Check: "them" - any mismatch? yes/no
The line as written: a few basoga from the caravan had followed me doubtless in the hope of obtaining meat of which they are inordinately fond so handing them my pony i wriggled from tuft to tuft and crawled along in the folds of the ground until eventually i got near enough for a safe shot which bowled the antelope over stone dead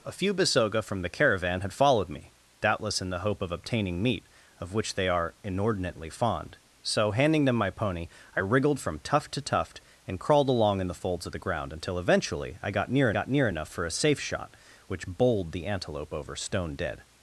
no